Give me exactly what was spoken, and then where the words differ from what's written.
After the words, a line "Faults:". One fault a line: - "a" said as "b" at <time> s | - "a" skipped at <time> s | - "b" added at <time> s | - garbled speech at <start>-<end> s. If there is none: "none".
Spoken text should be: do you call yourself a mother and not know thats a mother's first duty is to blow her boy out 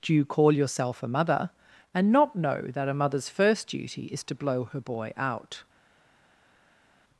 do you call yourself a mother and not know that a mother's first duty is to blow her boy out
Faults:
- "thats" said as "that" at 2.7 s